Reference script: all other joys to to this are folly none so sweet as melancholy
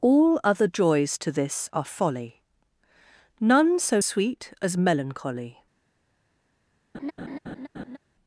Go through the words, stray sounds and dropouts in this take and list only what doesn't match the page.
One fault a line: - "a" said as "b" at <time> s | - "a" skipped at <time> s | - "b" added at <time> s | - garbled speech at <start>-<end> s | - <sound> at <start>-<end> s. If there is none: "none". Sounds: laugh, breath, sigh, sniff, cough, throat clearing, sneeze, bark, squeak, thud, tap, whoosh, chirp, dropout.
- "to" skipped at 1.3 s
- laugh at 6.9-8.0 s